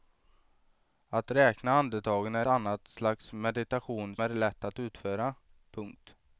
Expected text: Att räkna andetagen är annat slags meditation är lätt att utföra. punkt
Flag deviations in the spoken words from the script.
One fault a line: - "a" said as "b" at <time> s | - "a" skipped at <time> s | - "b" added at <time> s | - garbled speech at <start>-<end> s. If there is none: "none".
none